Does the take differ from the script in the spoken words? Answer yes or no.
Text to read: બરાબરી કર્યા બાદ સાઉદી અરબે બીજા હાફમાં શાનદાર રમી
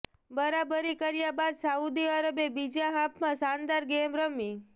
yes